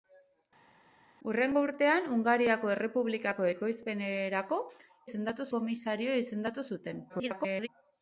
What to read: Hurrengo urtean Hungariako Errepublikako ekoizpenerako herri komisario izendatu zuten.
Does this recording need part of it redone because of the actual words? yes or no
yes